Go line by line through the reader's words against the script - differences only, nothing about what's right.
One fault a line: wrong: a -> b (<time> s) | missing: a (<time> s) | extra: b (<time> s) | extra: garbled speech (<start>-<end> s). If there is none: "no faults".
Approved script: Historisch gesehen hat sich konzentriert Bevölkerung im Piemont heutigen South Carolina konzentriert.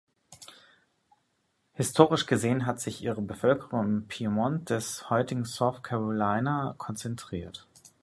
wrong: konzentriert -> ihre (3.0 s)
extra: des (4.7 s)